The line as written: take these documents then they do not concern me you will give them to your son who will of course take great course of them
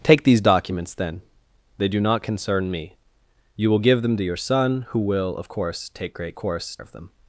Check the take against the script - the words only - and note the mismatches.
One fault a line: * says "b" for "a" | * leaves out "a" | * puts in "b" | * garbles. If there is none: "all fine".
all fine